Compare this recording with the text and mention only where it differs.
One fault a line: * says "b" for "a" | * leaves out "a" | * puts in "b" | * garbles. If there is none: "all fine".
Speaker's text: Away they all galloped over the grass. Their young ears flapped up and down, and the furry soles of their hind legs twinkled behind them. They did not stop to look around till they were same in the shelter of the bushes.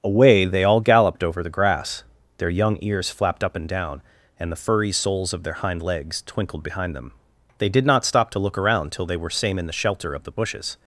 all fine